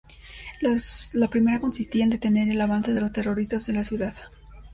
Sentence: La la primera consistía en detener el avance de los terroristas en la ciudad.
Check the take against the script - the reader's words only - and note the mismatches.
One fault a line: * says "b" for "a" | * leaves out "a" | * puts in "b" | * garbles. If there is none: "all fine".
* leaves out "la"